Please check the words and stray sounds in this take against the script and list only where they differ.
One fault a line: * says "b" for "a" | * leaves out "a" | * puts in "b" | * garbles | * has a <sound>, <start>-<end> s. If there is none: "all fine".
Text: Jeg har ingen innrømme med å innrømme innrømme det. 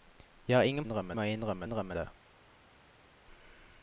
all fine